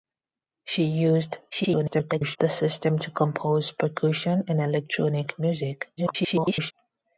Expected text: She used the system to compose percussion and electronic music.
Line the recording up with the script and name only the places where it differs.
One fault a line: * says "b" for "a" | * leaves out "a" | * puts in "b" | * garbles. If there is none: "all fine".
* garbles
* garbles